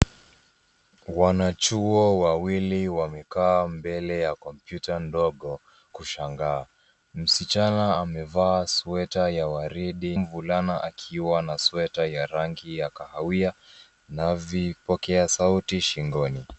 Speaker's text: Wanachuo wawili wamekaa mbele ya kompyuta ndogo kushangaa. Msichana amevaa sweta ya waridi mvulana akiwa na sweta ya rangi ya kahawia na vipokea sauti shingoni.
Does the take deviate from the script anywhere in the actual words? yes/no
no